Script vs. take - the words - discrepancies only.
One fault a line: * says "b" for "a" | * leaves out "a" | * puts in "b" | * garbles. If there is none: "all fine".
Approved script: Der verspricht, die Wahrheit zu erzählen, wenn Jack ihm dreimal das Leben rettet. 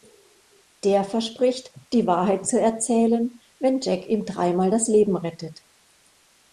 all fine